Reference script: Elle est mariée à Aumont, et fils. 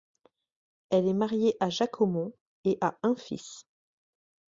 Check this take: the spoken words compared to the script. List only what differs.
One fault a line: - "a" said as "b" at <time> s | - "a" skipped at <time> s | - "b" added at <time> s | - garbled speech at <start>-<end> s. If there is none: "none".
- "Jacques" added at 1.7 s
- "a un" added at 2.8 s